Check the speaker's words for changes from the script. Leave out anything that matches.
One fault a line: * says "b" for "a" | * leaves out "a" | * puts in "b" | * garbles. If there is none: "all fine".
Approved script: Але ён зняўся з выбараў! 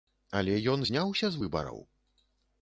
all fine